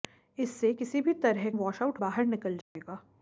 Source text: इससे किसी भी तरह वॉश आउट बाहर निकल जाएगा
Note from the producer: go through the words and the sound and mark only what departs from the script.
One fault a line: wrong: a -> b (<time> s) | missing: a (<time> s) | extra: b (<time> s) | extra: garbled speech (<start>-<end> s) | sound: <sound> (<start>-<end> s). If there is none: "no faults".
sound: dropout (2.6-2.8 s)